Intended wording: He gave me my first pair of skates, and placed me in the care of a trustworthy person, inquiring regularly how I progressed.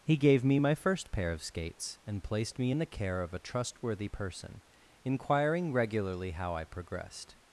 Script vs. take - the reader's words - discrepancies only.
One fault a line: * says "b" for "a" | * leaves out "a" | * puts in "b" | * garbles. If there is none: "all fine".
all fine